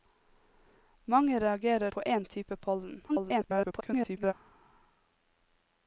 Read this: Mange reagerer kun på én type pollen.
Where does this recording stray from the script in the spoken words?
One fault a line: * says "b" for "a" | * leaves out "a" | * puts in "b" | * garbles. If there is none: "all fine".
* leaves out "kun"
* garbles